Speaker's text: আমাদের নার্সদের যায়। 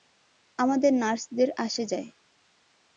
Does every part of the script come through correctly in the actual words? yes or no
no